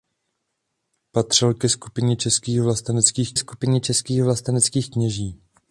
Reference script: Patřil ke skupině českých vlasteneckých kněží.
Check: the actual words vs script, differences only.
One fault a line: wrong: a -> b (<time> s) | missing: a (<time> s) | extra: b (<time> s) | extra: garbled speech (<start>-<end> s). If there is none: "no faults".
extra: skupině českých vlasteneckých (3.4 s)